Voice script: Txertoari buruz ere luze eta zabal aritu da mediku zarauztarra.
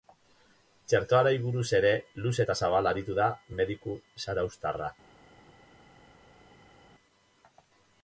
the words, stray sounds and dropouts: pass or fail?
pass